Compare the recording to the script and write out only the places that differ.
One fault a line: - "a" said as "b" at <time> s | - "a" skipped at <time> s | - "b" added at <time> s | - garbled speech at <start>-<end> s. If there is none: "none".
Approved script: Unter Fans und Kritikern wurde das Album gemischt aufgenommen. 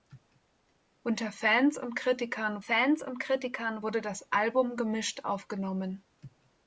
- "Fans und Kritikern" added at 2.6 s